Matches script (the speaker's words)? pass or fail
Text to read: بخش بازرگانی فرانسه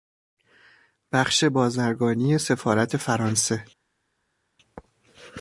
fail